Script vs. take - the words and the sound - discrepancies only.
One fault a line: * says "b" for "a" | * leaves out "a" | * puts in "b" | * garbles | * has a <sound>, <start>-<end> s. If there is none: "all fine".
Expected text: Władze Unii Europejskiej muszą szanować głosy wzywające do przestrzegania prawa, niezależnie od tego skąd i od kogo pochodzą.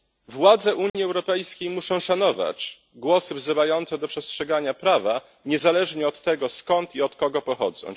* has a dropout, 0.9-0.9 s